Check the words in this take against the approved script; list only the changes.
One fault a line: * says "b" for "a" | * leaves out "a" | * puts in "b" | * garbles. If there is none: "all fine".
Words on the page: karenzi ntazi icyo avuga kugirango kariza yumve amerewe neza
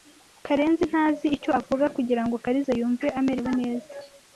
all fine